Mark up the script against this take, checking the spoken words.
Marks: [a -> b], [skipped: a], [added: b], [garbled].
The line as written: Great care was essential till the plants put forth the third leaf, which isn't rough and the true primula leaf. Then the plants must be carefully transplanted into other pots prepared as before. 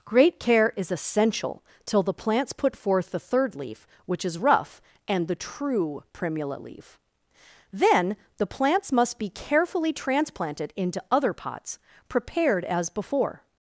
Great care [was -> is] essential till the plants put forth the third leaf, which [isn't -> is] rough and the true primula leaf. Then the plants must be carefully transplanted into other pots prepared as before.